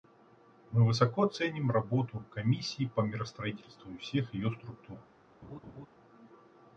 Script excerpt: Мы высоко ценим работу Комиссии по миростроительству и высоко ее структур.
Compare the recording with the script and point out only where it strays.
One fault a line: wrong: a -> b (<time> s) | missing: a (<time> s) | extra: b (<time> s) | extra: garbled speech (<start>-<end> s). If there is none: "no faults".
wrong: высоко -> всех (4.0 s)